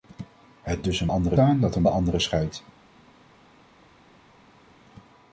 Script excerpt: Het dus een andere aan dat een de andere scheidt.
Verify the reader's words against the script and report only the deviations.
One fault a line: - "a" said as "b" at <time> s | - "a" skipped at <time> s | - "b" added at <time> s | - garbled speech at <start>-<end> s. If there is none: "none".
none